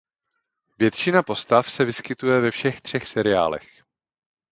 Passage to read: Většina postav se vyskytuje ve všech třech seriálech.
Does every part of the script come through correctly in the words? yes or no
yes